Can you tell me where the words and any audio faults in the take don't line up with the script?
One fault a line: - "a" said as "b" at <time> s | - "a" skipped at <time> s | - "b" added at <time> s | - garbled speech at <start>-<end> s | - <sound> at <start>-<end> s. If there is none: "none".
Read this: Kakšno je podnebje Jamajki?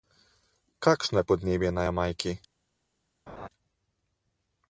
- "na" added at 1.7 s
- laugh at 3.3-3.5 s